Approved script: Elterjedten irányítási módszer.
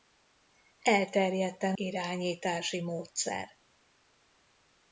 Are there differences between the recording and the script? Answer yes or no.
no